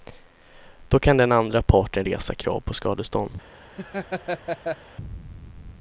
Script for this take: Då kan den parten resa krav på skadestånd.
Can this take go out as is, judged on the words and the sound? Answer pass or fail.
fail